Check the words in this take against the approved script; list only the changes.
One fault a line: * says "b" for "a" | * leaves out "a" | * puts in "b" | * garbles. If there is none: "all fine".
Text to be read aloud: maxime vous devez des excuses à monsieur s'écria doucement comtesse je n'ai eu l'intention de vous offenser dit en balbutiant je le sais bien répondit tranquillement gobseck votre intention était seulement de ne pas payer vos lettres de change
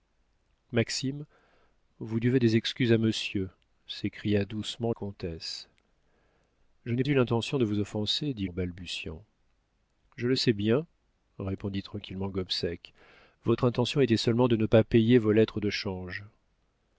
all fine